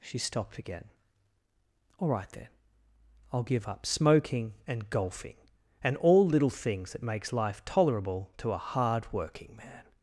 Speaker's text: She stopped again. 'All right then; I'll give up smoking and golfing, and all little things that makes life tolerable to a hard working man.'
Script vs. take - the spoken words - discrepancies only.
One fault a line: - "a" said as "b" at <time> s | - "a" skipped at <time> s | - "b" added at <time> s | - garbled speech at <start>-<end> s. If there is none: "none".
none